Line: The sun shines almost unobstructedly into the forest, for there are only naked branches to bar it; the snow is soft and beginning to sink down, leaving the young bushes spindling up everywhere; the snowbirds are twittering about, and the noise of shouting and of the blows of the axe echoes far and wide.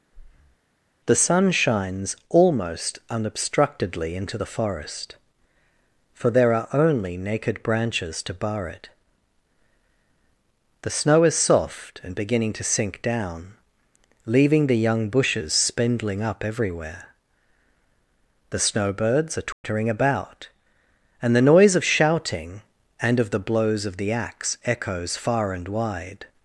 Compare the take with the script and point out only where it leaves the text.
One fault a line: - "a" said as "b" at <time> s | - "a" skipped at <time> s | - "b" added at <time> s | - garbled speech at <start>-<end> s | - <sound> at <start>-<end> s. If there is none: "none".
- breath at 0.1-0.6 s
- dropout at 19.5-19.6 s